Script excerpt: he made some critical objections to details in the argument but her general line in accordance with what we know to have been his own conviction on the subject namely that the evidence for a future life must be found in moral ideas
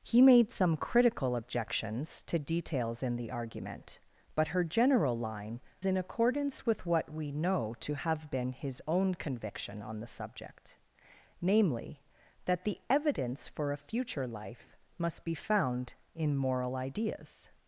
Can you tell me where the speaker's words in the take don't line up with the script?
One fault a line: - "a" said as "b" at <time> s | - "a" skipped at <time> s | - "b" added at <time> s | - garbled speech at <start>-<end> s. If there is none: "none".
none